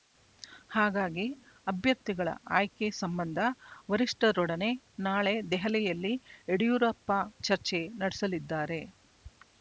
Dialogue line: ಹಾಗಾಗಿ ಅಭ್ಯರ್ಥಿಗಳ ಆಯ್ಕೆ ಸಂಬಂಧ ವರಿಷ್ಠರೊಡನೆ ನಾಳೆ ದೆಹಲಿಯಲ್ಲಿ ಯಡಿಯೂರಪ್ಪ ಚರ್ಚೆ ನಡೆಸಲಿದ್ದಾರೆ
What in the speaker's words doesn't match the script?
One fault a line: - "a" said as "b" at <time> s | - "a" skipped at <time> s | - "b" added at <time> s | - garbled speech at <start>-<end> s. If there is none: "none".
none